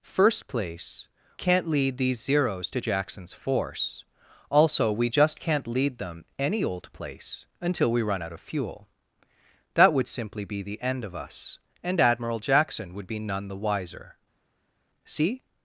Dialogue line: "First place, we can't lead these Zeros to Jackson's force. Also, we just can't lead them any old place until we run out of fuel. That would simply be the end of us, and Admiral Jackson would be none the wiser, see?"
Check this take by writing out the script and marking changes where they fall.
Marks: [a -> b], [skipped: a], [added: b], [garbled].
"First place, [skipped: we] can't lead these Zeros to Jackson's force. Also, we just can't lead them any old place until we run out of fuel. That would simply be the end of us, and Admiral Jackson would be none the wiser, see?"